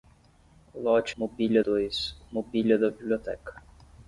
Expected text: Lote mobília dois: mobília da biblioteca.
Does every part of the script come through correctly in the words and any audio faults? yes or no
yes